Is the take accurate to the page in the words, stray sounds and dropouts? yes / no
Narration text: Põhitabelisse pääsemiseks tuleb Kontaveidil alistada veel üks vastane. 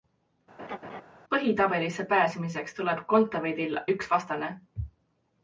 no